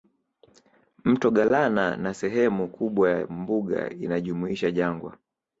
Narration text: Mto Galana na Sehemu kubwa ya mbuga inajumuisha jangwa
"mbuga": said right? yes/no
yes